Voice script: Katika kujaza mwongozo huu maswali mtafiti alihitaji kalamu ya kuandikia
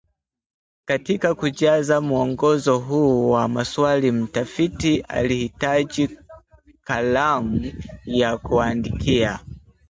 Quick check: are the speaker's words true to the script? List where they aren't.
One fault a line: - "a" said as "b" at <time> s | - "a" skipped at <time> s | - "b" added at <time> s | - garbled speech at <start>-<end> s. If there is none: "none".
- "wa" added at 3.3 s